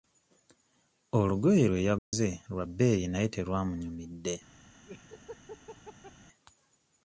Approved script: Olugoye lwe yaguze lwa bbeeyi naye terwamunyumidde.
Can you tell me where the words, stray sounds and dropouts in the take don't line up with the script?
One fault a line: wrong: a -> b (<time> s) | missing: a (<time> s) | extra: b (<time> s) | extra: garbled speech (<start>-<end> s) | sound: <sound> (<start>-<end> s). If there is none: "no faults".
sound: dropout (2.0-2.1 s)
sound: laugh (4.9-6.1 s)